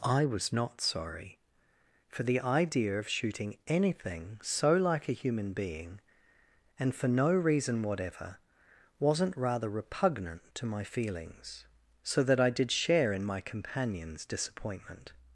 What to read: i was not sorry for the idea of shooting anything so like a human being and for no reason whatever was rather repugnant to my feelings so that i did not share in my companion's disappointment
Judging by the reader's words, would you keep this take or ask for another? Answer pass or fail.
fail